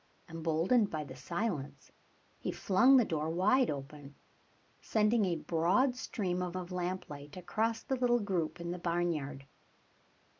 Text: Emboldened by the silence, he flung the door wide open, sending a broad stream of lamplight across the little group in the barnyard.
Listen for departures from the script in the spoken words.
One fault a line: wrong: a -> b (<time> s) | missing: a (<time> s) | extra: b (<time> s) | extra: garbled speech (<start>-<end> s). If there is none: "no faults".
extra: of (6.6 s)